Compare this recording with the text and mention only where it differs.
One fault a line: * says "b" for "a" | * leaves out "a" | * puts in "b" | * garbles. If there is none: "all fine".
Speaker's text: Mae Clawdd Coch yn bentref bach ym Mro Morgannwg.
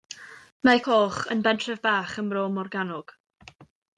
* leaves out "Clawdd"